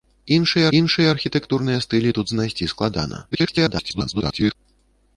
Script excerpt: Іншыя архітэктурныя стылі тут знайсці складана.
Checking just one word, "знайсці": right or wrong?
right